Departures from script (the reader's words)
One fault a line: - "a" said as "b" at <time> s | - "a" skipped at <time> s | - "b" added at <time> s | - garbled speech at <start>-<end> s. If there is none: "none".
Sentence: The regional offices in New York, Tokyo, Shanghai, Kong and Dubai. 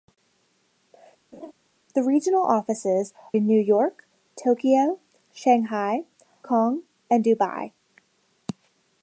none